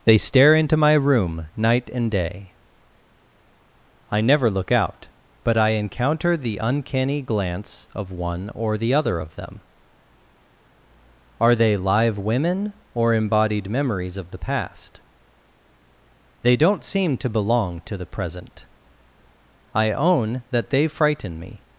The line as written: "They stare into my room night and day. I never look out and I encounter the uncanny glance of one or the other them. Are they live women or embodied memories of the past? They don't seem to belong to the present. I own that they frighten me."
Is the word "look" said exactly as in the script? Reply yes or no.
yes